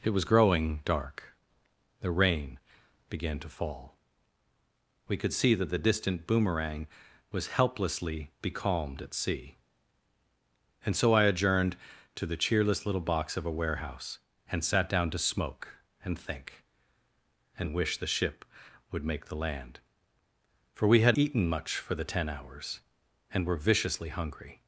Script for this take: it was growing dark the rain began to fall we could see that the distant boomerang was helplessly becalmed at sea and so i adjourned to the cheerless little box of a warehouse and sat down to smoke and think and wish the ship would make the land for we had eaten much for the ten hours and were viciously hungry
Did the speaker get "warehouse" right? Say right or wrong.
right